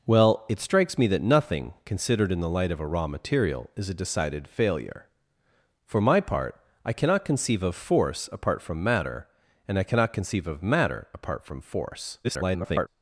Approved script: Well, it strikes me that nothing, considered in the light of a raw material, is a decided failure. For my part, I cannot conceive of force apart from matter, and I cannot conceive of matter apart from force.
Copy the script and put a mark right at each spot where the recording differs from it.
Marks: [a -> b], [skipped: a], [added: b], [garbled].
Well, it strikes me that nothing, considered in the light of a raw material, is a decided failure. For my part, I cannot conceive of force apart from matter, and I cannot conceive of matter apart from force. [garbled]